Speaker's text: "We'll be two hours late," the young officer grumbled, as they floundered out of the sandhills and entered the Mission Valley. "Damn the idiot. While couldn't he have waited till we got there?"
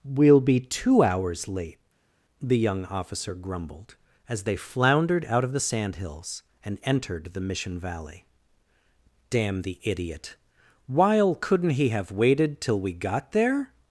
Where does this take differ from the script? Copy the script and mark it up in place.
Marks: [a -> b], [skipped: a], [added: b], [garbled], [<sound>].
"We'll be two hours late," the young officer grumbled, as they floundered out of the sandhills and entered the Mission Valley. "Damn the idiot. While couldn't he have waited till we got there?"